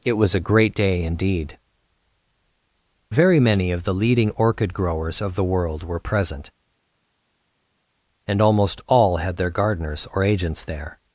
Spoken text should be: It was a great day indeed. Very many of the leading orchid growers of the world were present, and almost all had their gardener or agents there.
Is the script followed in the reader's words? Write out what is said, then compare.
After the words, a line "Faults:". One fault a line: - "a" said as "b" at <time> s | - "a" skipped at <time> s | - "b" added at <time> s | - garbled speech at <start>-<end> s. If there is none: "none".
It was a great day indeed. Very many of the leading orchid growers of the world were present, and almost all had their gardeners or agents there.
Faults:
- "gardener" said as "gardeners" at 9.5 s